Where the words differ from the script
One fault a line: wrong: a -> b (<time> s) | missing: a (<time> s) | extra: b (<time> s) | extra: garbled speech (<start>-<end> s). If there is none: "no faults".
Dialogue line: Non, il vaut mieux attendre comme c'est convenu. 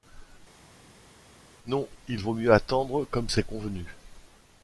no faults